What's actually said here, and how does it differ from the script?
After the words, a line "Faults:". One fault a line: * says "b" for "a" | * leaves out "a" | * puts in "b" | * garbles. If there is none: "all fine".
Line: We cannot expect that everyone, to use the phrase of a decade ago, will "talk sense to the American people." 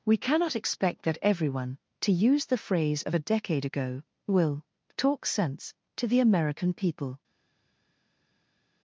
We cannot expect that everyone, to use the phrase of a decade ago, will "talk sense to the American people."
Faults:
all fine